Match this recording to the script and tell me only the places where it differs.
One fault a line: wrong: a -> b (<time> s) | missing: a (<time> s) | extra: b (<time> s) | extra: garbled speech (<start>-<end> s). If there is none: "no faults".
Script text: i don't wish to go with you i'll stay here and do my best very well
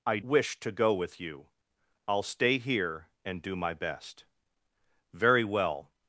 missing: don't (0.2 s)